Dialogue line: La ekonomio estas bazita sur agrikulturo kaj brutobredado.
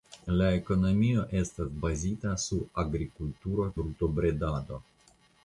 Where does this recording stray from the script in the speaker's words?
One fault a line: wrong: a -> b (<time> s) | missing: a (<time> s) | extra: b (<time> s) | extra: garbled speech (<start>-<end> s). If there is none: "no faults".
missing: kaj (3.7 s)